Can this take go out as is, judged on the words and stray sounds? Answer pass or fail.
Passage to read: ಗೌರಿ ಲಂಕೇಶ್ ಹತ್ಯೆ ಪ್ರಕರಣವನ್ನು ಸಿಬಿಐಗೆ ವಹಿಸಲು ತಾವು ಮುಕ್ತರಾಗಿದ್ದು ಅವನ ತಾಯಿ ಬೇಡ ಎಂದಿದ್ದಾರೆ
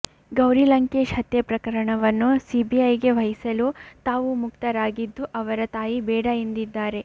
fail